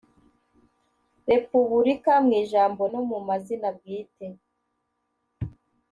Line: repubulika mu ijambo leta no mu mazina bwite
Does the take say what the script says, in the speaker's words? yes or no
no